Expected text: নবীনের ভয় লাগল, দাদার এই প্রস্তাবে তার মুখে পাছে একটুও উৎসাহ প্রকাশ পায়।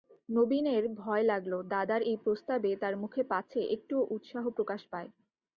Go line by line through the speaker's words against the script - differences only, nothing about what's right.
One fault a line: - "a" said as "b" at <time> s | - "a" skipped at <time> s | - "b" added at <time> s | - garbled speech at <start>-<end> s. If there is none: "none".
none